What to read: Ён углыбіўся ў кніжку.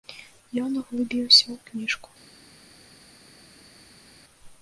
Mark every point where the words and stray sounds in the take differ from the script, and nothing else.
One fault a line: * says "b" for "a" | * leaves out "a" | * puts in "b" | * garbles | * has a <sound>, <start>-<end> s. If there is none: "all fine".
all fine